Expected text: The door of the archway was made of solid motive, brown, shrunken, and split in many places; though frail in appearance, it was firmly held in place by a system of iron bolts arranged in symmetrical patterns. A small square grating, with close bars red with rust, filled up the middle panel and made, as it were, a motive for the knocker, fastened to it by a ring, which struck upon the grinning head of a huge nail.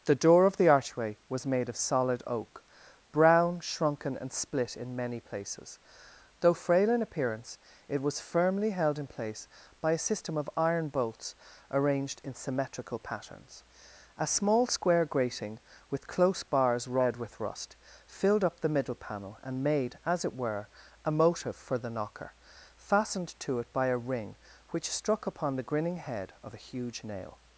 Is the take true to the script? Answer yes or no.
no